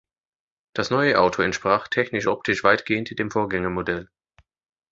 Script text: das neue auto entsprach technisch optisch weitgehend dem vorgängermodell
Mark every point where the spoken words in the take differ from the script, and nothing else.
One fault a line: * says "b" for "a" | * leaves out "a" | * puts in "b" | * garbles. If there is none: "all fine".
all fine